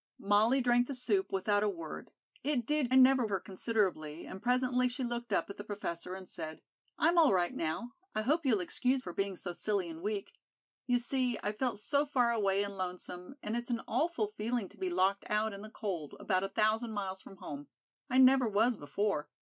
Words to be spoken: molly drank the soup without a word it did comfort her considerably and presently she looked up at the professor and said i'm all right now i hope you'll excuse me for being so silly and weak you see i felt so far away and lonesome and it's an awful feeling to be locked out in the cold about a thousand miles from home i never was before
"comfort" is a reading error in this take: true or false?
true